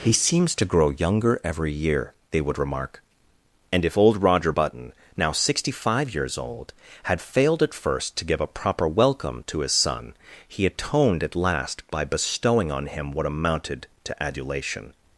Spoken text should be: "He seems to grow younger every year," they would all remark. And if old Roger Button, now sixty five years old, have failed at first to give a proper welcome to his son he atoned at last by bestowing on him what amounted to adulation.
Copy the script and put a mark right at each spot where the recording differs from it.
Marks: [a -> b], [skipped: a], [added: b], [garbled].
"He seems to grow younger every year," they would [skipped: all] remark. And if old Roger Button, now sixty five years old, [have -> had] failed at first to give a proper welcome to his son he atoned at last by bestowing on him what amounted to adulation.